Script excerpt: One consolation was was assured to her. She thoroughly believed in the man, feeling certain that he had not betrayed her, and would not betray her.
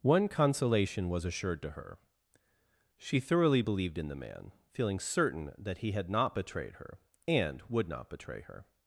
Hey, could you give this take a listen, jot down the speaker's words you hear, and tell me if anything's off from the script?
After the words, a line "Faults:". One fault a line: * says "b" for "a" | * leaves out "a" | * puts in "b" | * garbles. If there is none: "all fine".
One consolation was assured to her. She thoroughly believed in the man, feeling certain that he had not betrayed her, and would not betray her.
Faults:
* leaves out "was"